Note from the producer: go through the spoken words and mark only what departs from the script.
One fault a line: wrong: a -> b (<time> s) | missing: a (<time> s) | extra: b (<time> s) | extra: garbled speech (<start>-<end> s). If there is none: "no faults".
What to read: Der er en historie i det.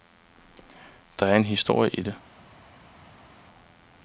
no faults